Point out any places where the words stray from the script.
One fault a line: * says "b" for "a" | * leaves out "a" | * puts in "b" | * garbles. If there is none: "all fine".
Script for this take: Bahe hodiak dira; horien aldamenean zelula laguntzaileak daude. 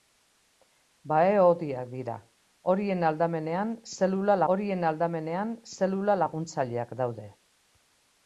* puts in "horien aldamenean zelula"